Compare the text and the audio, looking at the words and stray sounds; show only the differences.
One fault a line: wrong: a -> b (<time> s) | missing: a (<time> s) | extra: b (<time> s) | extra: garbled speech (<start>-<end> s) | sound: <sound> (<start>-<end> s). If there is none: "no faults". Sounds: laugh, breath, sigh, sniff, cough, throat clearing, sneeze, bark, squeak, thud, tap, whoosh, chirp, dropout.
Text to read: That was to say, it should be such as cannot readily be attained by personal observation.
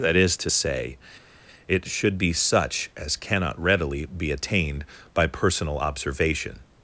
wrong: was -> is (0.1 s)